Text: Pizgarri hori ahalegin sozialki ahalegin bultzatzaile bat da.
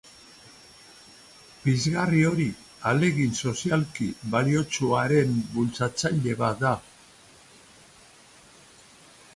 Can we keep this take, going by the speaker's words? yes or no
no